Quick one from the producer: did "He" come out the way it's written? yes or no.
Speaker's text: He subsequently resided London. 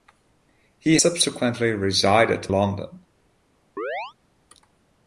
yes